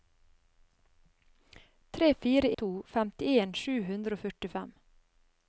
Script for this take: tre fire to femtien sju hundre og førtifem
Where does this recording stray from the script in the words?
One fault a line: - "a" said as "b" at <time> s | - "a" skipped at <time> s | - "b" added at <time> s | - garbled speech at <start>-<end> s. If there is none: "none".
none